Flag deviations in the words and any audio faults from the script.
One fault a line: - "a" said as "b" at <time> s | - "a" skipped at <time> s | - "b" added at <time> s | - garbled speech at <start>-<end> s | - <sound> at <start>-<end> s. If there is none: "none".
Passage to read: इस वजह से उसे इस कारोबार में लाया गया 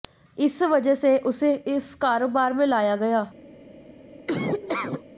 - laugh at 4.3-5.0 s